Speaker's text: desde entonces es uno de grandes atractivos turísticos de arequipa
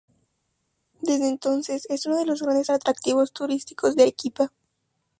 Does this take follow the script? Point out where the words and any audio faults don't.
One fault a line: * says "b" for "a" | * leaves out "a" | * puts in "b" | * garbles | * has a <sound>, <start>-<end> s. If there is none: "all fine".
* puts in "los"